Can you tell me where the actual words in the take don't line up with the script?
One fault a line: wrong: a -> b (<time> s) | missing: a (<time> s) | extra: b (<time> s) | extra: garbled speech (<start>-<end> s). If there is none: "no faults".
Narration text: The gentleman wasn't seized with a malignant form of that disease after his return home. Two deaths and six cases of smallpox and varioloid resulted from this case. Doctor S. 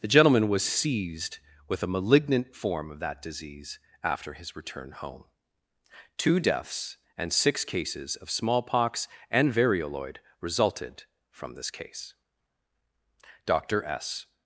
wrong: wasn't -> was (0.5 s)